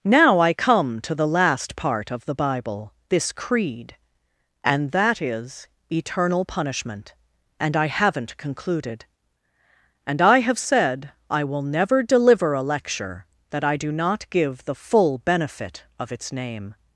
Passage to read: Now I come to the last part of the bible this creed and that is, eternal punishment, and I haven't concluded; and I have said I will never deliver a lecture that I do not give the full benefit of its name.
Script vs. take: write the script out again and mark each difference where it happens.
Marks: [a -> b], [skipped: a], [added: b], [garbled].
Now I come to the last part of the bible this creed and that is, eternal punishment, and I haven't concluded; and I have said I will never deliver a lecture that I do not give the full benefit of its name.